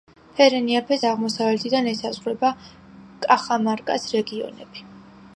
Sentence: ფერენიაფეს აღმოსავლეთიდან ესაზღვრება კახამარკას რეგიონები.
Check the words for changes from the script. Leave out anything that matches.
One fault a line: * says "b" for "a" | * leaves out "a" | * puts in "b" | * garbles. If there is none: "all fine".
all fine